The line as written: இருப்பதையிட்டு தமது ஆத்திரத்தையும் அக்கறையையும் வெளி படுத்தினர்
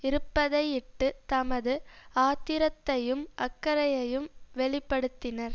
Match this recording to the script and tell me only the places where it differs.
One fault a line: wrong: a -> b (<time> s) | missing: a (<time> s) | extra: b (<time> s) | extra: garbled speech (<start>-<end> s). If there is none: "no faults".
no faults